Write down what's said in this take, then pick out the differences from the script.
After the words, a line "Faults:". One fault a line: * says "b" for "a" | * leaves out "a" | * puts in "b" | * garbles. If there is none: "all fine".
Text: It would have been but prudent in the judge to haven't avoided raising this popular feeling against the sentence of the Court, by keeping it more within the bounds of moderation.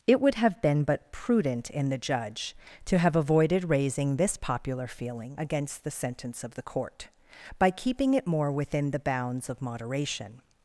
It would have been but prudent in the judge to have avoided raising this popular feeling against the sentence of the Court, by keeping it more within the bounds of moderation.
Faults:
* says "have" for "haven't"